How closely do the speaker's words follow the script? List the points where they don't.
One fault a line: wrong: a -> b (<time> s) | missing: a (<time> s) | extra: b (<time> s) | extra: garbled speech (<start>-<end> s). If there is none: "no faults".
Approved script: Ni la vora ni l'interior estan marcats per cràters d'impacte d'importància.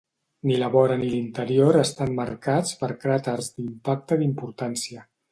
no faults